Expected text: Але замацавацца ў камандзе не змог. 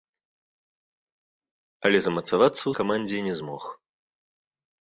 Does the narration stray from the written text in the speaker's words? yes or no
no